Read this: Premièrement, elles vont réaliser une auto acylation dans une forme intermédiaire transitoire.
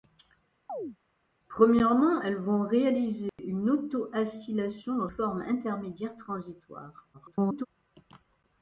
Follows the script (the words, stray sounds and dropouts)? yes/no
no